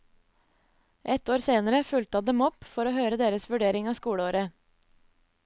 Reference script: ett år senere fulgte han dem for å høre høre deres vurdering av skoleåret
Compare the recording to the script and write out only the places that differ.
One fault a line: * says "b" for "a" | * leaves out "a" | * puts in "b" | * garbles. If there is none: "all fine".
* puts in "opp"
* leaves out "høre"